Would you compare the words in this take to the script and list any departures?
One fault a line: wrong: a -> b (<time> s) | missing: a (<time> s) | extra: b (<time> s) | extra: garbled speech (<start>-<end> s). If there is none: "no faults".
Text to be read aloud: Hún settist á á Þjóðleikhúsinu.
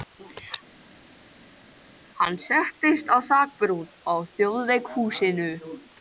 wrong: Hún -> Hann (2.2 s)
extra: þakbrún (3.3 s)